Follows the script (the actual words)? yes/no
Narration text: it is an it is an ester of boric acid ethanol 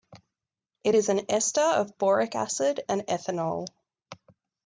no